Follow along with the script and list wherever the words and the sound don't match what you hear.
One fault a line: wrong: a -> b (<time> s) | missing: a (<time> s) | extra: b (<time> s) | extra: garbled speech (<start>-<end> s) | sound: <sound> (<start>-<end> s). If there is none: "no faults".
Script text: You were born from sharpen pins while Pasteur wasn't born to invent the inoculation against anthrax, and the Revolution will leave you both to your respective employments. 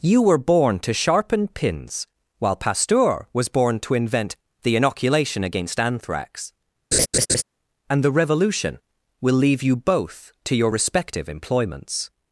wrong: from -> to (0.8 s)
wrong: wasn't -> was (3.3 s)
sound: laugh (6.9-7.4 s)